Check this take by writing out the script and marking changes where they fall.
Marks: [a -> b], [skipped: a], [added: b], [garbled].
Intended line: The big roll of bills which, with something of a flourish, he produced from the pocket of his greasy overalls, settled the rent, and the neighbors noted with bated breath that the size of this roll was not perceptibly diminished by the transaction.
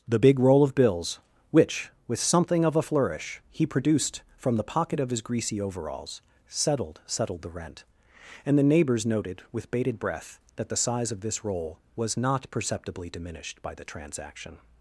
The big roll of bills which, with something of a flourish, he produced from the pocket of his greasy overalls, settled [added: settled] the rent, and the neighbors noted with bated breath that the size of this roll was not perceptibly diminished by the transaction.